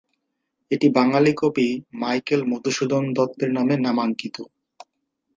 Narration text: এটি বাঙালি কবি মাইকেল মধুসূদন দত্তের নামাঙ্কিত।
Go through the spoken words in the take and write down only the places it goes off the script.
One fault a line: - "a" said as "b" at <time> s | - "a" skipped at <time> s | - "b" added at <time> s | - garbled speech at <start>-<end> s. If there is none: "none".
- "নামে" added at 3.5 s